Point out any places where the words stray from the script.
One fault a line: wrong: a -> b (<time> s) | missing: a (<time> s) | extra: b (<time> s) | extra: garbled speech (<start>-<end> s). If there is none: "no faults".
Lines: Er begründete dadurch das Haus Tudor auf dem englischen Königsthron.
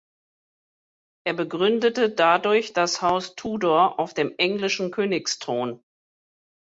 no faults